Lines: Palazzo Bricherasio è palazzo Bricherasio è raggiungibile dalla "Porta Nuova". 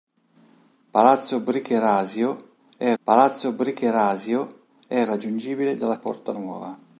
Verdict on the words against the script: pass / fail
pass